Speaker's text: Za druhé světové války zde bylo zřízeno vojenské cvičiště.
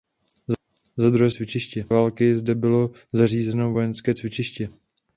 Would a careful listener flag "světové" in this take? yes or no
yes